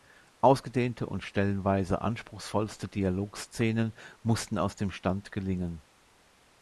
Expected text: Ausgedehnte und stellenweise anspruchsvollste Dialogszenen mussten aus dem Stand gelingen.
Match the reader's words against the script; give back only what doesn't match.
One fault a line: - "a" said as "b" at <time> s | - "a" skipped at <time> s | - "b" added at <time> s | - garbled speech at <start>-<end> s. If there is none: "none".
none